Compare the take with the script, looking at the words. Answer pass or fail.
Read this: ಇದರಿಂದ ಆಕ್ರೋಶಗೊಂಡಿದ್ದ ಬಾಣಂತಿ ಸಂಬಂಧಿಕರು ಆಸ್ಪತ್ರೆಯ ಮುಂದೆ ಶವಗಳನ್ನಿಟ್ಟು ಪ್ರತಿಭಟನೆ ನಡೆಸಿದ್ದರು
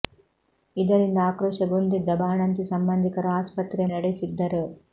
fail